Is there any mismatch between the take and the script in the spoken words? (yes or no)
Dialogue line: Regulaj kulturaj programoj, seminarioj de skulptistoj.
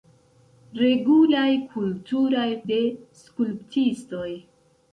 yes